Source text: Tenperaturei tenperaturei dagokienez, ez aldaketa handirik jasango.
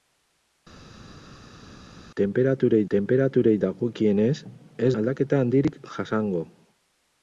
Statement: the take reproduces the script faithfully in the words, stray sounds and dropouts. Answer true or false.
true